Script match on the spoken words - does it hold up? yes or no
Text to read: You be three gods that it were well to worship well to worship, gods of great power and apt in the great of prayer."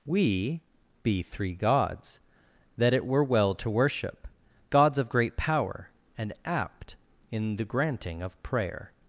no